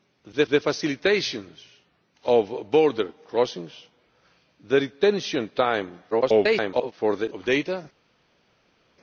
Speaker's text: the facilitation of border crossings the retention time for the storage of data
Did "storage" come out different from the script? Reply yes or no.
yes